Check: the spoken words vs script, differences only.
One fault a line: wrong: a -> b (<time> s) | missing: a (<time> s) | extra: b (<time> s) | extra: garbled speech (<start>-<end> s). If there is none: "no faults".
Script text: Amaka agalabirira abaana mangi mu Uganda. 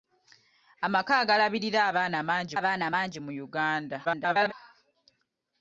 extra: abaana mangi (2.6 s)
extra: garbled speech (4.0-4.5 s)